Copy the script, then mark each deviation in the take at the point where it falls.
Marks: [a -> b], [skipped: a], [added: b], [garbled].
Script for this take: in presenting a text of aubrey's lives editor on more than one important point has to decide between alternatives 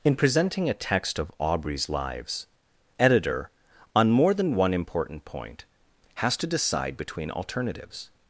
in presenting a text of aubrey's lives editor on more than one important point has to decide between alternatives